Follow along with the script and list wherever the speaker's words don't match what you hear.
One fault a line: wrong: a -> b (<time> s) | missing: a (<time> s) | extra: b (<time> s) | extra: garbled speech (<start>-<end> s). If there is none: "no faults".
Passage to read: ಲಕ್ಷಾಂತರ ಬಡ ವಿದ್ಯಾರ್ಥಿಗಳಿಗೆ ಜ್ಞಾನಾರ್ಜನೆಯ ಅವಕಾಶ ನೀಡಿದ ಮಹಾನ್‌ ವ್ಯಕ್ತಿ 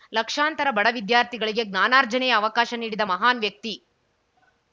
no faults